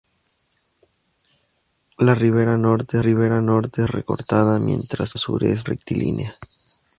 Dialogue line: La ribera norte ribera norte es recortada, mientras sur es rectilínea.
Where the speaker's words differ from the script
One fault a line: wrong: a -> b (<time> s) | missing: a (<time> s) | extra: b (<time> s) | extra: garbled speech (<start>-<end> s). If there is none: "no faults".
no faults